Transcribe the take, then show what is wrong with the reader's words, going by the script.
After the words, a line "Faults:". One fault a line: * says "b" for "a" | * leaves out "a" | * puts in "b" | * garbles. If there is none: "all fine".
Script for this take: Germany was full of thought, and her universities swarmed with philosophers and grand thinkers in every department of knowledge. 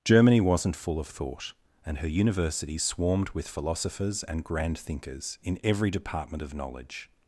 Germany wasn't full of thought, and her universities swarmed with philosophers and grand thinkers in every department of knowledge.
Faults:
* says "wasn't" for "was"